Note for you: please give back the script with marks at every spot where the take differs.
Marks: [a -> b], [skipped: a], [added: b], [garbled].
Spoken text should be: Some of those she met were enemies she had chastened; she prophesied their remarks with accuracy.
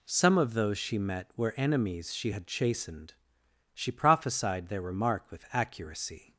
Some of those she met were enemies she had chastened; she prophesied their [remarks -> remark] with accuracy.